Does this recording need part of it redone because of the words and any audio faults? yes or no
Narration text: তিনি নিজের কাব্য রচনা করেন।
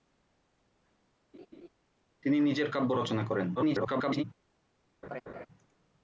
yes